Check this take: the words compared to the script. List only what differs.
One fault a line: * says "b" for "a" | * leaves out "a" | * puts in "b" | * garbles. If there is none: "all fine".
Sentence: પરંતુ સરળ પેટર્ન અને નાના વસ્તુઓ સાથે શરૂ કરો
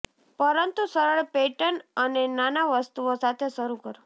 all fine